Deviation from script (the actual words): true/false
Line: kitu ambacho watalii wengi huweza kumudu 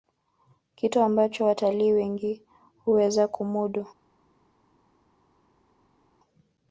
false